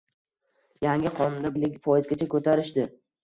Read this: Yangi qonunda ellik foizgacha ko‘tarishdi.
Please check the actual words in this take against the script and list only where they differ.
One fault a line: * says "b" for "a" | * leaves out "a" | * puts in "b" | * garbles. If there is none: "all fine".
all fine